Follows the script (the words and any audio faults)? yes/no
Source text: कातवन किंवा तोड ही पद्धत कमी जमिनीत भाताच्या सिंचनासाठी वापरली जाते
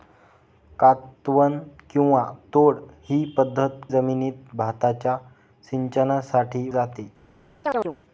no